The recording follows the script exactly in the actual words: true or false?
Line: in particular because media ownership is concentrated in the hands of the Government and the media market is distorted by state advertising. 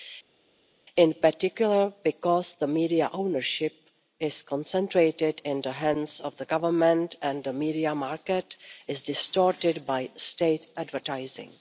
true